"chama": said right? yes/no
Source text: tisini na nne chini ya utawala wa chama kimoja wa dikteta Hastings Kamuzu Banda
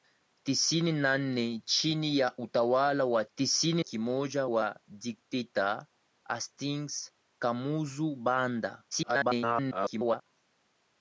no